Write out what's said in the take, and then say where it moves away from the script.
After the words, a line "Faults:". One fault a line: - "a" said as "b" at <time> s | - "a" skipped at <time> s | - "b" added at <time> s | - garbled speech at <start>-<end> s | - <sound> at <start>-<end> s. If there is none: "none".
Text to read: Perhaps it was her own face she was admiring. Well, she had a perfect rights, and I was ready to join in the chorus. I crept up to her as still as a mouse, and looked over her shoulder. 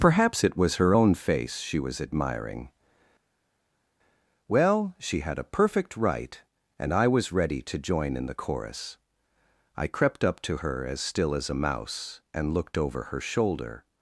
Perhaps it was her own face she was admiring. Well, she had a perfect right, and I was ready to join in the chorus. I crept up to her as still as a mouse, and looked over her shoulder.
Faults:
- "rights" said as "right" at 6.0 s